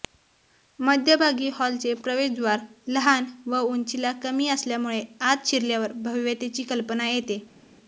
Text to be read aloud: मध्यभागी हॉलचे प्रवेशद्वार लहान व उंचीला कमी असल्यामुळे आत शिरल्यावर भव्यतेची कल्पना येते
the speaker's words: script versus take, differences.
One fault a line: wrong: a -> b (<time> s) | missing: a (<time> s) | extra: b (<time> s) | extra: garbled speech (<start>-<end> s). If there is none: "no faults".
no faults